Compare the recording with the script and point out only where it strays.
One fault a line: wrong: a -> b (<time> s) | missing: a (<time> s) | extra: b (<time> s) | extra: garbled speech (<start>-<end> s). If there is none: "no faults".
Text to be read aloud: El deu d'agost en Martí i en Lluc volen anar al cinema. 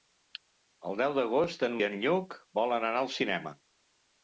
missing: Martí (1.8 s)